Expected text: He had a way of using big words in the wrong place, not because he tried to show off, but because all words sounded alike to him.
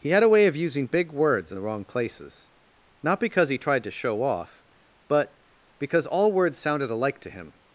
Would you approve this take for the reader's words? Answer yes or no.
no